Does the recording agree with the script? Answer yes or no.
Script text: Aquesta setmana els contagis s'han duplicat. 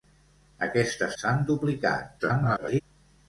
no